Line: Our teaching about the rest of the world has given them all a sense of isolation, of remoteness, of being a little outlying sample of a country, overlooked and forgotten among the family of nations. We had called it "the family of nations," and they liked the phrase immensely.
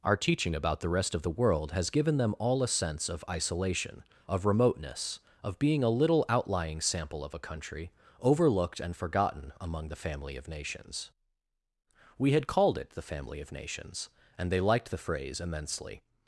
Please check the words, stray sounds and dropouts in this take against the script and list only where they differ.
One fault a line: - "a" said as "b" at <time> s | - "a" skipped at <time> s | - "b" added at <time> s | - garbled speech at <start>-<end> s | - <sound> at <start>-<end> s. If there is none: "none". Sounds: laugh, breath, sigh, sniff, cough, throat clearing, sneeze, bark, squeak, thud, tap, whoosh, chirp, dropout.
none